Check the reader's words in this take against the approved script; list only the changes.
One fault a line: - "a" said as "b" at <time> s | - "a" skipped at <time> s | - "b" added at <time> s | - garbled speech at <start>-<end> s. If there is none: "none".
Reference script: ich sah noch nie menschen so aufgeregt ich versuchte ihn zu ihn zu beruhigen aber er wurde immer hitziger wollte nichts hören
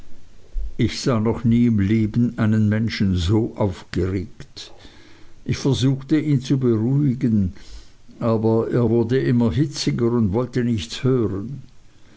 - "im leben einen" added at 1.7 s
- "ihn zu" skipped at 6.6 s
- "und" added at 10.1 s